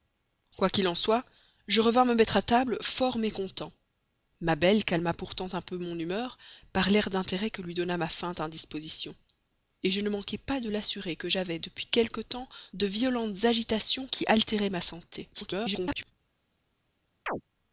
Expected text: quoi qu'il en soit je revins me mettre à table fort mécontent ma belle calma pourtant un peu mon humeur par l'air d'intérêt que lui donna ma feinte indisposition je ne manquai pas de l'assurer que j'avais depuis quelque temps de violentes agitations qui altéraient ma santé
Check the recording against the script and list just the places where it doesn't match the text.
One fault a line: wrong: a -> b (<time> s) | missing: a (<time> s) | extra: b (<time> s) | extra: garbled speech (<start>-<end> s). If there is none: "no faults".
extra: garbled speech (15.3-16.1 s)